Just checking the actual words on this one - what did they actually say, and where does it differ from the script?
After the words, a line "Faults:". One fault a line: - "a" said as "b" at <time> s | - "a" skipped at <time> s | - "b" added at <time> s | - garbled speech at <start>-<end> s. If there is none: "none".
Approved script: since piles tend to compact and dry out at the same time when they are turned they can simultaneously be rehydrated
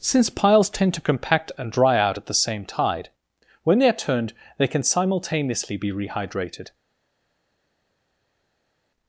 since piles tend to compact and dry out at the same tide when they are turned they can simultaneously be rehydrated
Faults:
- "time" said as "tide" at 2.6 s